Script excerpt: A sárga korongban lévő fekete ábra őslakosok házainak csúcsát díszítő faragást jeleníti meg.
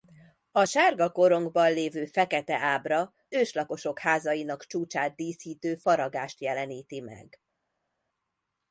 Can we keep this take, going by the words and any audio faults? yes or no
yes